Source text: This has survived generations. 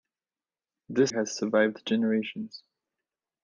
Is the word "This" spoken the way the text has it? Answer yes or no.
yes